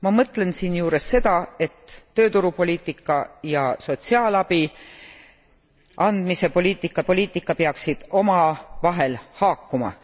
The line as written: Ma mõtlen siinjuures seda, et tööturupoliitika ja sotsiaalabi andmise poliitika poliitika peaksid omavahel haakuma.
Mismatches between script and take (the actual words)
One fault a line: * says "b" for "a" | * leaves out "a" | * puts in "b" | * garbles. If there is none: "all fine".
all fine